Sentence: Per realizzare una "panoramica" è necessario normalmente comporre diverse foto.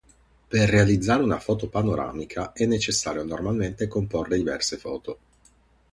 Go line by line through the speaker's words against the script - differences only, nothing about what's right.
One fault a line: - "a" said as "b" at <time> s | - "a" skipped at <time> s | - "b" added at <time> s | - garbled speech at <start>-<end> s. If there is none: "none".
- "foto" added at 1.4 s